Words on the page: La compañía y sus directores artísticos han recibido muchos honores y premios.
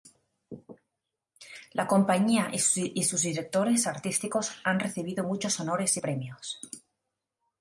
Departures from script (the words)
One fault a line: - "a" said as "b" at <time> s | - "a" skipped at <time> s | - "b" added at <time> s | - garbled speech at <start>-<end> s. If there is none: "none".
none